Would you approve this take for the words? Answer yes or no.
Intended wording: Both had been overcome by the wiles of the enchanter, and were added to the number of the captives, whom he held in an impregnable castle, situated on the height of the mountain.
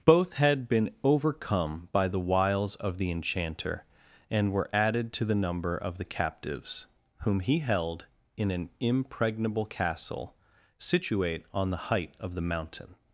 no